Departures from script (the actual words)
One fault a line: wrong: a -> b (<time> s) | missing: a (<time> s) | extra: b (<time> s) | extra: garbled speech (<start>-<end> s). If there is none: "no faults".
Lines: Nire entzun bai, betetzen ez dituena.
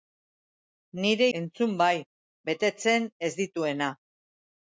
no faults